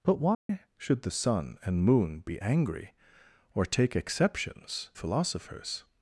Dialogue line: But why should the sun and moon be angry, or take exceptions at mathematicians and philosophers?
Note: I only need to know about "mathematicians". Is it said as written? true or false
false